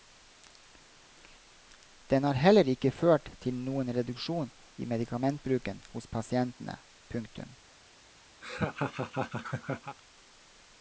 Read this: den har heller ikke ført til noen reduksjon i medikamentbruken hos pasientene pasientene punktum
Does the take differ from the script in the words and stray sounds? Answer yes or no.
yes